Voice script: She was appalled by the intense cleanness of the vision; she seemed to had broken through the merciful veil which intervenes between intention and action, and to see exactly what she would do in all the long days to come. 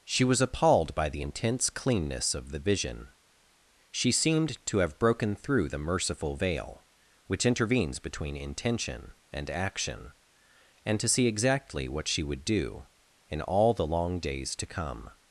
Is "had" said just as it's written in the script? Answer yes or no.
no